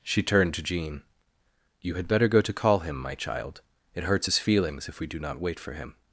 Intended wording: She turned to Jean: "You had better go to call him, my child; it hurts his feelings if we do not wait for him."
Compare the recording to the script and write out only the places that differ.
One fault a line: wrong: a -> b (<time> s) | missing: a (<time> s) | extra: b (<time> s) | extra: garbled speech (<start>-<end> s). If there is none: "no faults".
no faults